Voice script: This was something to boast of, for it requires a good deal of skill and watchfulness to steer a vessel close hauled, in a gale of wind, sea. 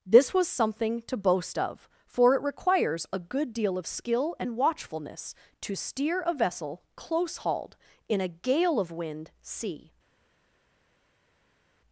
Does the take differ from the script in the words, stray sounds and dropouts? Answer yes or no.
no